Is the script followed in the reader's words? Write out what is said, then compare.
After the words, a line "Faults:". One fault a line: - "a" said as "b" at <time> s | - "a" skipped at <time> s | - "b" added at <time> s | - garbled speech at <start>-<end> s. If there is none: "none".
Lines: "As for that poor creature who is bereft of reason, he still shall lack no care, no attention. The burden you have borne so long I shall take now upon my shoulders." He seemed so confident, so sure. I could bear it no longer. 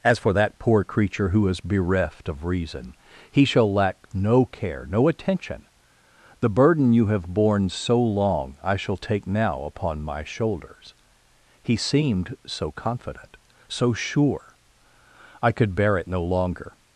"As for that poor creature who is bereft of reason, he shall lack no care, no attention. The burden you have borne so long I shall take now upon my shoulders." He seemed so confident, so sure. I could bear it no longer.
Faults:
- "still" skipped at 3.5 s